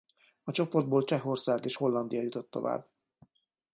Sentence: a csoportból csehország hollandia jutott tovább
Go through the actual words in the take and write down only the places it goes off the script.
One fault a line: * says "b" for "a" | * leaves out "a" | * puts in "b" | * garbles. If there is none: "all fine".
* puts in "és"